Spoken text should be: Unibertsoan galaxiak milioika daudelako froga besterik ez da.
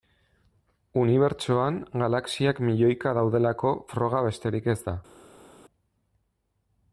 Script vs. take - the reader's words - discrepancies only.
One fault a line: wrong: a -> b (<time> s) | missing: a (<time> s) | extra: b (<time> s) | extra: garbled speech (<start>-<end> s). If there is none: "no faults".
no faults